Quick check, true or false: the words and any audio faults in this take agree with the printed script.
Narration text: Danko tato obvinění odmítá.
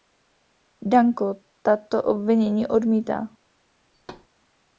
false